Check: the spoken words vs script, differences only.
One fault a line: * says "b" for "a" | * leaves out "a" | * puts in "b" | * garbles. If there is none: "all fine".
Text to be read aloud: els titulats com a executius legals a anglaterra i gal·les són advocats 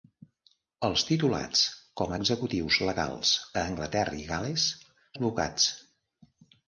* leaves out "són"